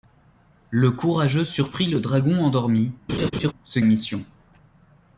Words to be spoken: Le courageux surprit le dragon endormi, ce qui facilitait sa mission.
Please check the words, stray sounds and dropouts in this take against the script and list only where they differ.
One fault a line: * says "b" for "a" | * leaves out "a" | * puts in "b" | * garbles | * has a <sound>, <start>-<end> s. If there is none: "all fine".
* has a laugh, 3.1-3.5 s
* leaves out "qui facilitait sa"